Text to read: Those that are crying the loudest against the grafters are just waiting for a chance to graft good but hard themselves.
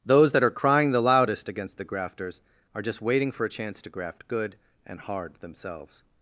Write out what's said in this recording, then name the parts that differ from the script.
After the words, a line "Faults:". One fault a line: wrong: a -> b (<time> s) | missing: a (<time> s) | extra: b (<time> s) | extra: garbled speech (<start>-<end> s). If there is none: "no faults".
Those that are crying the loudest against the grafters are just waiting for a chance to graft good and hard themselves.
Faults:
wrong: but -> and (4.9 s)